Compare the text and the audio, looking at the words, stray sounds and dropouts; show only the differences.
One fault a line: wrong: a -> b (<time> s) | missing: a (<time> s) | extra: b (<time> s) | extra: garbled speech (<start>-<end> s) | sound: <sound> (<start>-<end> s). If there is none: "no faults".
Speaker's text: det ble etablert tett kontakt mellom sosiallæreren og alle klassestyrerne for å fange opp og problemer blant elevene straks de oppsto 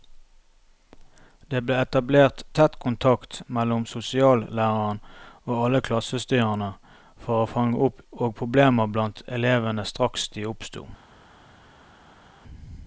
no faults